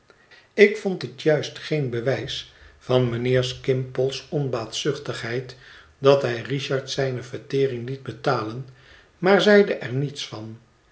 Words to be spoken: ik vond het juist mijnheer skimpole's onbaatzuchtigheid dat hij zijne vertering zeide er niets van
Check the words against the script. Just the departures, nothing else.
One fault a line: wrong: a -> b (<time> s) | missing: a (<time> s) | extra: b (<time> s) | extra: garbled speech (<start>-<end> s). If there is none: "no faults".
extra: geen bewijs van (1.6 s)
extra: richard (6.4 s)
extra: liet betalen maar (7.9 s)